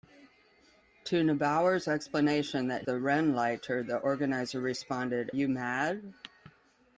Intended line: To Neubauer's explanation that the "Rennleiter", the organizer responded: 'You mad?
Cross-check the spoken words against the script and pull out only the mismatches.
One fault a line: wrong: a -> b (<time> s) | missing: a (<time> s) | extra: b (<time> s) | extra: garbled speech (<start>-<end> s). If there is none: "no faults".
no faults